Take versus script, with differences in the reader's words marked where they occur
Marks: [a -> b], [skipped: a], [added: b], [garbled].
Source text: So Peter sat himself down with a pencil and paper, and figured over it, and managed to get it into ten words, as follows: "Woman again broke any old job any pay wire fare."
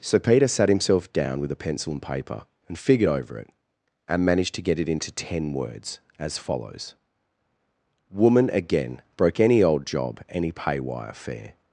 So Peter sat himself down with a pencil and paper, and figured over it, and managed to get it into ten words, as follows: "Woman again broke any old job any pay wire fare."